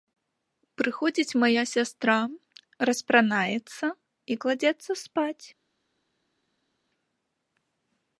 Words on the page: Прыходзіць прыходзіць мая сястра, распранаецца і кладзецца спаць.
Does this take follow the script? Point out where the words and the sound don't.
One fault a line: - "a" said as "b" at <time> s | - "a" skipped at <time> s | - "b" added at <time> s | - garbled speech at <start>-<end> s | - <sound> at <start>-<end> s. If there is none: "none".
- "прыходзіць" skipped at 1.4 s